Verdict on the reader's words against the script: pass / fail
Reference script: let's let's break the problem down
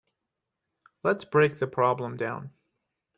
fail